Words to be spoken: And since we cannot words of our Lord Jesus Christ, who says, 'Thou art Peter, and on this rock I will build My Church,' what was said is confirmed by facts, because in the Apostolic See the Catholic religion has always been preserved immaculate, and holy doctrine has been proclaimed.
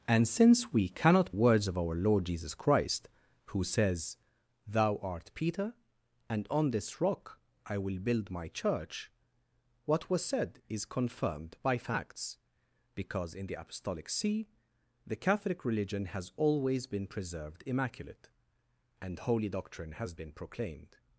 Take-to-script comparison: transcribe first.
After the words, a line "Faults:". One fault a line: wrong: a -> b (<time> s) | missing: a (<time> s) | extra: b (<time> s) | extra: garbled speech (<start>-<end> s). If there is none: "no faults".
And since we cannot words of our Lord Jesus Christ, who says, 'Thou art Peter, and on this rock I will build My Church,' what was said is confirmed by facts, because in the Apostolic See the Catholic religion has always been preserved immaculate, and holy doctrine has been proclaimed.
Faults:
no faults